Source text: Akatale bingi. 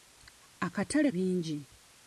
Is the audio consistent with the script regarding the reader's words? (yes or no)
yes